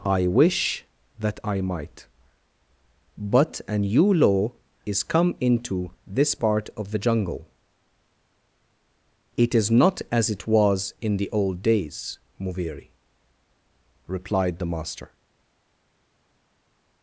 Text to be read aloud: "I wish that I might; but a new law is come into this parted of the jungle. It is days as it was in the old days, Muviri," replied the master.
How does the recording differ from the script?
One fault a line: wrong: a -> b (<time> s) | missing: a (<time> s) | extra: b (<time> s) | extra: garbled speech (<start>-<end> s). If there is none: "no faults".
wrong: parted -> part (6.3 s)
wrong: days -> not (9.7 s)